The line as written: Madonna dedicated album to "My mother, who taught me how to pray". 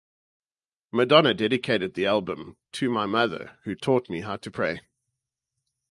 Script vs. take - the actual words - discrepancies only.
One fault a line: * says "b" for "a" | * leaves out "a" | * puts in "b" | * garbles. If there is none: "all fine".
* puts in "the"